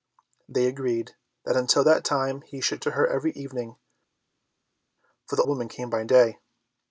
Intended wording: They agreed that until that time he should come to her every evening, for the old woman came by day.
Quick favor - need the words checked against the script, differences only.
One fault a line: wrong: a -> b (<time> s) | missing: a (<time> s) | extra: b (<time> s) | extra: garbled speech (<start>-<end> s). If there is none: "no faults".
missing: come (2.8 s)
missing: old (5.4 s)